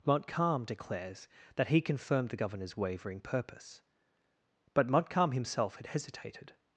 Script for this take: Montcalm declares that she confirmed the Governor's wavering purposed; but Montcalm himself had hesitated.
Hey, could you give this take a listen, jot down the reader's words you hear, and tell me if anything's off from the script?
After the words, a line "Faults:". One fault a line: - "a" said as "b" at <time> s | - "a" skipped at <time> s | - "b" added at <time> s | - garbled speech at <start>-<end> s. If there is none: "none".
Montcalm declares that he confirmed the Governor's wavering purpose; but Montcalm himself had hesitated.
Faults:
- "she" said as "he" at 1.7 s
- "purposed" said as "purpose" at 3.2 s